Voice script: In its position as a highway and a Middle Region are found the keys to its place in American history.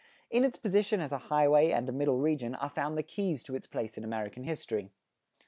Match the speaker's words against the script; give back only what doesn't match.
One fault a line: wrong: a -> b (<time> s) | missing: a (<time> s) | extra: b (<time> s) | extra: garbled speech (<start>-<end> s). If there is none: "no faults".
no faults